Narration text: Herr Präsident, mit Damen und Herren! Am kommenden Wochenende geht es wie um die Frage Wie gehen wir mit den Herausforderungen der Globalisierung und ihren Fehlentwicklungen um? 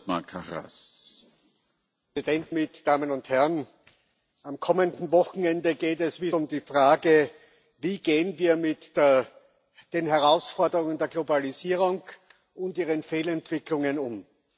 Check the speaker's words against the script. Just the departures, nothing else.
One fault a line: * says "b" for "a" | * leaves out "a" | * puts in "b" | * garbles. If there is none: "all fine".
all fine